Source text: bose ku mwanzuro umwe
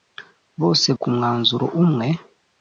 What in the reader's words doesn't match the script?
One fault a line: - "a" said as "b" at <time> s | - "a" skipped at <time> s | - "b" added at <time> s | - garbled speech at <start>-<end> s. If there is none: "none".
none